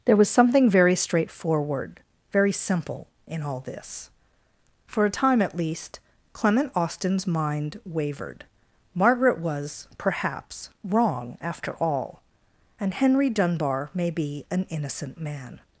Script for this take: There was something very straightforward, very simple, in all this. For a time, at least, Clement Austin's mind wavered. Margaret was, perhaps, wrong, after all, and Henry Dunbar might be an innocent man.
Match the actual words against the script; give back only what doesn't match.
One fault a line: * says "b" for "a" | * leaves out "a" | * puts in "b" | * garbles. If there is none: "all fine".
* says "may" for "might"